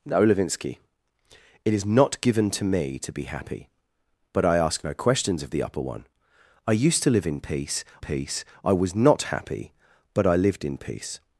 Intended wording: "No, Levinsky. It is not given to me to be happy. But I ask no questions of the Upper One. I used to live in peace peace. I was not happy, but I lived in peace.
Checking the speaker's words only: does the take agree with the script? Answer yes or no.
yes